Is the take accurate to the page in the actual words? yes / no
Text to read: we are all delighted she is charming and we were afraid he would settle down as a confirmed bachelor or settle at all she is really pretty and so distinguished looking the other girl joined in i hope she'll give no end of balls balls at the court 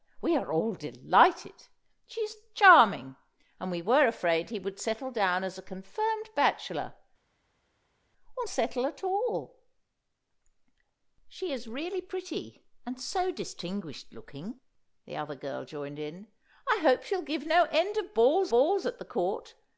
yes